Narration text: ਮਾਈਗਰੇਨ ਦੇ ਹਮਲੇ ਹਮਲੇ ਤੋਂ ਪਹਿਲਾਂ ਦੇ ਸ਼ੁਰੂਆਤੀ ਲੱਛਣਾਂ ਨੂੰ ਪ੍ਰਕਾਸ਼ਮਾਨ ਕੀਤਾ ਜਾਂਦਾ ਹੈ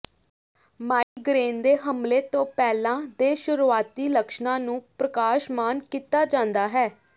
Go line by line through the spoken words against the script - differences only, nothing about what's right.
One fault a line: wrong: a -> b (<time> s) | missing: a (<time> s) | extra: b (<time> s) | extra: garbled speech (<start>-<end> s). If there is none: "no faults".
missing: ਹਮਲੇ (2.2 s)